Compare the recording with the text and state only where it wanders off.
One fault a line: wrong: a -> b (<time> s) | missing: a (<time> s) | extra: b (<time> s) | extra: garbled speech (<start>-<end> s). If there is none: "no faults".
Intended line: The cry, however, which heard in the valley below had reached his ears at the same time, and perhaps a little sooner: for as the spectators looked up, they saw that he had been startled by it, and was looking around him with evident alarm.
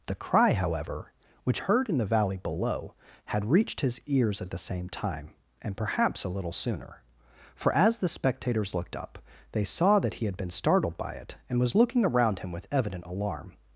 no faults